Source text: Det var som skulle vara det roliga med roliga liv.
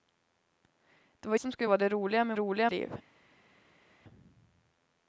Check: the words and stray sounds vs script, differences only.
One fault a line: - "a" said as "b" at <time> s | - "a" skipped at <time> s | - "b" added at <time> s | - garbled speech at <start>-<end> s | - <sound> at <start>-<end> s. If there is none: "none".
none